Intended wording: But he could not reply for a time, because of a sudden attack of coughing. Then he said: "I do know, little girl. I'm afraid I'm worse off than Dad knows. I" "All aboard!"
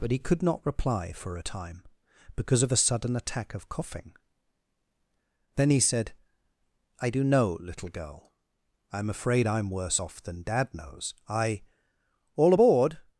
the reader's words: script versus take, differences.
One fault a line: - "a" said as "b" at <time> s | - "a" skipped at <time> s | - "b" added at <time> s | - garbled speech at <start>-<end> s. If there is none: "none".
none